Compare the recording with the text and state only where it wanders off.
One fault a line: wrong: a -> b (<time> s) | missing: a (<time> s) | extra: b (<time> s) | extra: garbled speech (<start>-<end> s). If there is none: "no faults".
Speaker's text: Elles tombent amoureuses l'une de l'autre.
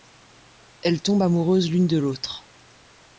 no faults